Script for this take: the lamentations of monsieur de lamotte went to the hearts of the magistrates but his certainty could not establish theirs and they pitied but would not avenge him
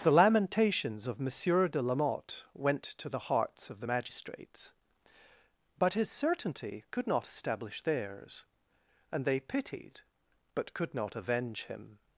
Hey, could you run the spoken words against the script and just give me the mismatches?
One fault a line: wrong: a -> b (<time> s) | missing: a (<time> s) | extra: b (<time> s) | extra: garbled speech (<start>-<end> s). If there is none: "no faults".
wrong: would -> could (10.7 s)